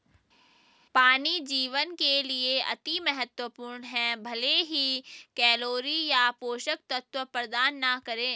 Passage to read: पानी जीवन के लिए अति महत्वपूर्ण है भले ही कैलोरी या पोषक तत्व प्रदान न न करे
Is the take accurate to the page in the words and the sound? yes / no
no